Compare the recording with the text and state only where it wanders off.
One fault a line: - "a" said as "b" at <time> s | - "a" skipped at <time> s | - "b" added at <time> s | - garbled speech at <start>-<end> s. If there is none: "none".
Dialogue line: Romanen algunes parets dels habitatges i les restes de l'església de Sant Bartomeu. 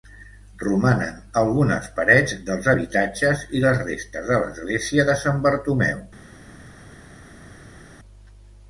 none